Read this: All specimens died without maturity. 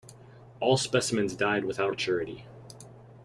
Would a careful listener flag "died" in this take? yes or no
no